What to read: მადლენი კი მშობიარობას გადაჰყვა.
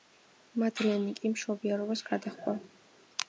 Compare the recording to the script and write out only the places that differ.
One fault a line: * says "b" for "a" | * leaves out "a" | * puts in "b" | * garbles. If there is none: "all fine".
all fine